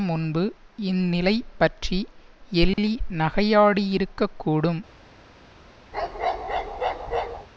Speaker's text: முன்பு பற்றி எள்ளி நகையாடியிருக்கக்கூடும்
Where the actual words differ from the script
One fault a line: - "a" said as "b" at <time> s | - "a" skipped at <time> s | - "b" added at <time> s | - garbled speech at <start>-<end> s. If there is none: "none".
- "இந்நிலை" added at 0.8 s